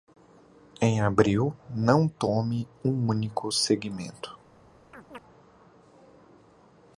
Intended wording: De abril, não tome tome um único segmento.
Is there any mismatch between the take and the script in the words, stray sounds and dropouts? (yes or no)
yes